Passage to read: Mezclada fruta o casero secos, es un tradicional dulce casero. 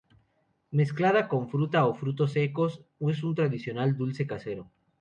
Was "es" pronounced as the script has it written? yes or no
yes